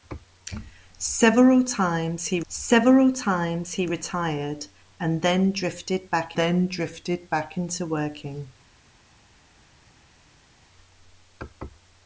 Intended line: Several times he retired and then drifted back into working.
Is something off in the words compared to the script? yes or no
yes